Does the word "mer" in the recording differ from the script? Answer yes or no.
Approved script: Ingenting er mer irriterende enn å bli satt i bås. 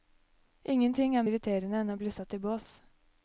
yes